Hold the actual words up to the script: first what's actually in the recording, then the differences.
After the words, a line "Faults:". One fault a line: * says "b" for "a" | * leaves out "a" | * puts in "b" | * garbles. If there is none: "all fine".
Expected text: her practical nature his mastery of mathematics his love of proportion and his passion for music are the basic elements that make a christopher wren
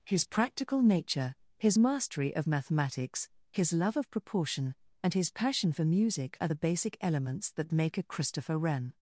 his practical nature his mastery of mathematics his love of proportion and his passion for music are the basic elements that make a christopher wren
Faults:
* says "his" for "her"